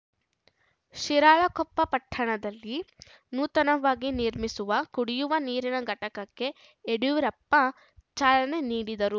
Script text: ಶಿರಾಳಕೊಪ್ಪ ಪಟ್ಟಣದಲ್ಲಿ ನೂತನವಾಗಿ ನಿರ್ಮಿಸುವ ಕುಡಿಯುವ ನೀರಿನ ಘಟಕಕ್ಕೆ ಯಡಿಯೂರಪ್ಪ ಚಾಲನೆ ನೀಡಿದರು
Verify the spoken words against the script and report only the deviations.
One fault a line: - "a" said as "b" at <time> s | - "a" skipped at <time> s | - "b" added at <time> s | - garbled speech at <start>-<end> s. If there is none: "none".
none